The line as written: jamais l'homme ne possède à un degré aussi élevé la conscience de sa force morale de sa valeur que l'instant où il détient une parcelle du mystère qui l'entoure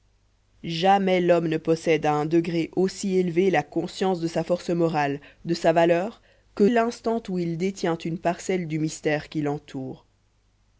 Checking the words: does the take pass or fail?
pass